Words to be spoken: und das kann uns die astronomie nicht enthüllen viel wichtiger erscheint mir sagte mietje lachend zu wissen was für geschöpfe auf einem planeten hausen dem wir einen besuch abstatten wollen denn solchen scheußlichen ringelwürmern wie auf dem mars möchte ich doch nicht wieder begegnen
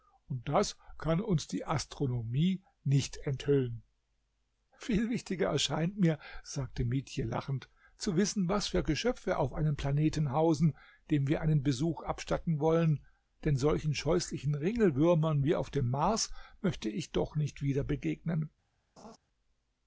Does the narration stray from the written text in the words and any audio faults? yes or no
yes